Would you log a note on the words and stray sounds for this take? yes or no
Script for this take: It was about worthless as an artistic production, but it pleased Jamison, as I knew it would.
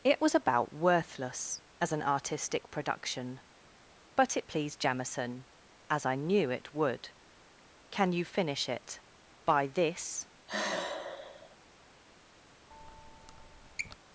yes